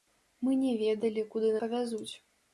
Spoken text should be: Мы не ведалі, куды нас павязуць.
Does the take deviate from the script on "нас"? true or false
true